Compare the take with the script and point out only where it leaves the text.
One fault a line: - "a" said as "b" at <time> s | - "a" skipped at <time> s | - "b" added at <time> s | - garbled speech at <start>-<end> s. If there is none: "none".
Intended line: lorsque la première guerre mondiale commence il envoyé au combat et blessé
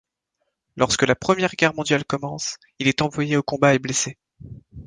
- "est" added at 2.9 s